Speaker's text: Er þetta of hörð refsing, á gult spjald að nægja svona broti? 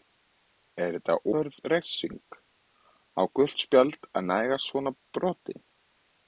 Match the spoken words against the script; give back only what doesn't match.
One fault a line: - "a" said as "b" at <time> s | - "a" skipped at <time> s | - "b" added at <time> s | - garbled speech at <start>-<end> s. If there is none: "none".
- "of" skipped at 1.2 s